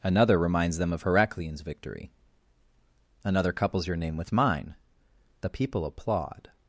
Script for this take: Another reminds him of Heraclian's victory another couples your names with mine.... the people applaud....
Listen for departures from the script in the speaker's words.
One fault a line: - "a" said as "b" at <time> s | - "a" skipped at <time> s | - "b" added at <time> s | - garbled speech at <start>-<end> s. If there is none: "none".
- "him" said as "them" at 0.8 s
- "names" said as "name" at 4.0 s